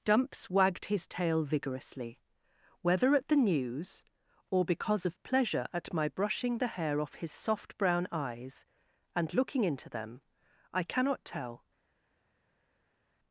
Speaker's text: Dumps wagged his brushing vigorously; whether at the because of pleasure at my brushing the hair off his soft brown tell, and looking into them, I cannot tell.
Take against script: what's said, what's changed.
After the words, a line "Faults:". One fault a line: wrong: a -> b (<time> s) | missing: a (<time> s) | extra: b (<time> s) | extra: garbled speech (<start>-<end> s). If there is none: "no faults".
Dumps wagged his tail vigorously; whether at the news, or because of pleasure at my brushing the hair off his soft brown eyes, and looking into them, I cannot tell.
Faults:
wrong: brushing -> tail (1.1 s)
extra: news or (3.4 s)
wrong: tell -> eyes (8.1 s)